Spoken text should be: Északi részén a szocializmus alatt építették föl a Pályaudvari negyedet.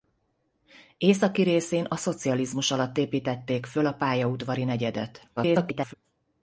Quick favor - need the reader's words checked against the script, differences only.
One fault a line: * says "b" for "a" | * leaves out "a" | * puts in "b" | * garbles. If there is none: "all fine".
* garbles